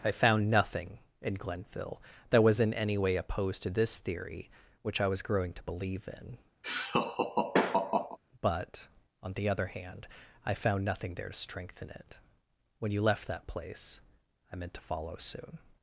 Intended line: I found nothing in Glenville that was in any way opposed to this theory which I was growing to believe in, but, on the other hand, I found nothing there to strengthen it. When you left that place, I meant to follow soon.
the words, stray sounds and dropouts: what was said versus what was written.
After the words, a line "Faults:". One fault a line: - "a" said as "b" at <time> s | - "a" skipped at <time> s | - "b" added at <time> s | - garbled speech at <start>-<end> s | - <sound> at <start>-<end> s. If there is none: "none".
I found nothing in Glenville that was in any way opposed to this theory which I was growing to believe in, but, on the other hand, I found nothing there to strengthen it. When you left that place, I meant to follow soon.
Faults:
- laugh at 6.6-8.2 s